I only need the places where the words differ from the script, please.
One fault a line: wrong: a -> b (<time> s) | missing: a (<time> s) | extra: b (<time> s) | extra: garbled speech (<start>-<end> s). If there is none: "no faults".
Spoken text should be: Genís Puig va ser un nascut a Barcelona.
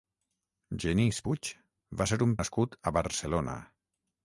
no faults